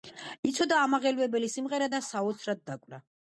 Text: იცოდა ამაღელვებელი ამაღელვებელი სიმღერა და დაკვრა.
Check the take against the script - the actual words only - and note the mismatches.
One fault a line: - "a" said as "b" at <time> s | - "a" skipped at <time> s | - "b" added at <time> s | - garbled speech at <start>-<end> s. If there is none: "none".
- "ამაღელვებელი" skipped at 1.5 s
- "საოცრად" added at 2.1 s